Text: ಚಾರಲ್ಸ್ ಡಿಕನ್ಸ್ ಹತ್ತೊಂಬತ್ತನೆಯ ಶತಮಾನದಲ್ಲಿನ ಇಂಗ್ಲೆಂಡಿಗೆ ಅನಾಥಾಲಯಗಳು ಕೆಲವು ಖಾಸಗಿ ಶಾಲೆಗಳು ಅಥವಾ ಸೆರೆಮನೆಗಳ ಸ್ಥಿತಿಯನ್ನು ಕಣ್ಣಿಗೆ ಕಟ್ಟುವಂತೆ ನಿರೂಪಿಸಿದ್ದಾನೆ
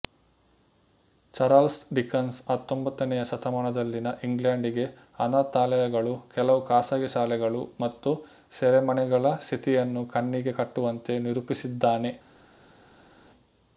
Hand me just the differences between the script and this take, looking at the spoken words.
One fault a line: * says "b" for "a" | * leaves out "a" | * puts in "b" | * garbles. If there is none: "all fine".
* says "ಮತ್ತು" for "ಅಥವಾ"